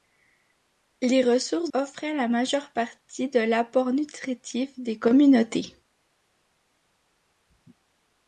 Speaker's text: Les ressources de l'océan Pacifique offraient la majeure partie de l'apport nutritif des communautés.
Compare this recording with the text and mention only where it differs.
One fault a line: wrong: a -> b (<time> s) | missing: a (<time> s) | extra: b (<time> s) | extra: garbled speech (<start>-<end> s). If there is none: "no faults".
missing: de l'océan Pacifique (1.7 s)